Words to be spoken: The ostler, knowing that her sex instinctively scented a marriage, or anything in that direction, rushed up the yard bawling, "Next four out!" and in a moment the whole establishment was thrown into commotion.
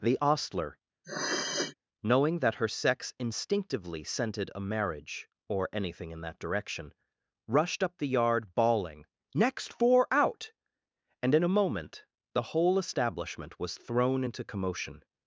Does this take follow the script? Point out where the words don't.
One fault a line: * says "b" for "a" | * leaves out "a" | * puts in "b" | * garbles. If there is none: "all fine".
all fine